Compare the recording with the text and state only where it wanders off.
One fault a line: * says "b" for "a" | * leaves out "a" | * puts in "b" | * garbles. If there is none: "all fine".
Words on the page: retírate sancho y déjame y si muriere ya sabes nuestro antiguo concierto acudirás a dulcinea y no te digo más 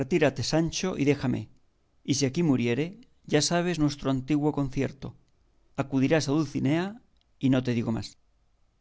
* puts in "aquí"